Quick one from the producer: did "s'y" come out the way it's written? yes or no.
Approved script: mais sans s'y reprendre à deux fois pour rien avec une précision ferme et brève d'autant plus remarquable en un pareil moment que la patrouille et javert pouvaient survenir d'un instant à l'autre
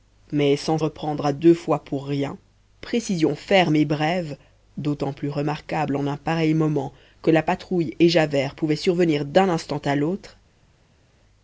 no